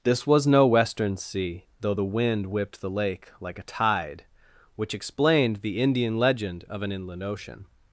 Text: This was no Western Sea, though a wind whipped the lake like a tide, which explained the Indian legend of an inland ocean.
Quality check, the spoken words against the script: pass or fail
fail